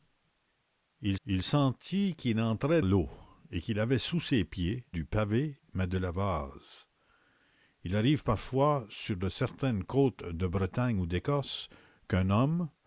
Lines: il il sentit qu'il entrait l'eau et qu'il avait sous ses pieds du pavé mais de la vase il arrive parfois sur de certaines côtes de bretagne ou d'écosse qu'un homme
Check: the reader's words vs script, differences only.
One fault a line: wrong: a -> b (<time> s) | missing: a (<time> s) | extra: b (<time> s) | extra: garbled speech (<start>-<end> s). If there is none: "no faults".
no faults